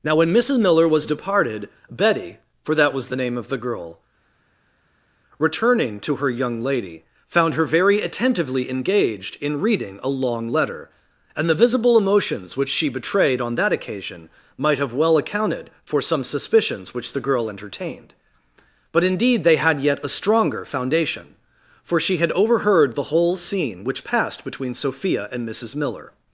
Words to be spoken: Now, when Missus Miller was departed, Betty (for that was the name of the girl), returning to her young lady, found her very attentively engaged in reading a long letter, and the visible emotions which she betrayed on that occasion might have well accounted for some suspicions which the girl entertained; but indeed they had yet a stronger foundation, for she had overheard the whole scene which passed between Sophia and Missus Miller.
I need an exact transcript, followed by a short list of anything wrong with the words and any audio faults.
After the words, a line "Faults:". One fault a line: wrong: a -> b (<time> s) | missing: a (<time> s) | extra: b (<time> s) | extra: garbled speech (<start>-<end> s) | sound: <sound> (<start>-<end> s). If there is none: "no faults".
Now, when Missus Miller was departed, Betty (for that was the name of the girl), returning to her young lady, found her very attentively engaged in reading a long letter, and the visible emotions which she betrayed on that occasion might have well accounted for some suspicions which the girl entertained; but indeed they had yet a stronger foundation, for she had overheard the whole scene which passed between Sophia and Missus Miller.
Faults:
no faults